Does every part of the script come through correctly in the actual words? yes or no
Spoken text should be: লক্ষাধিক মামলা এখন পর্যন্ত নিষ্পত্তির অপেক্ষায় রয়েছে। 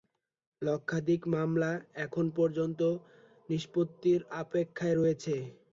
yes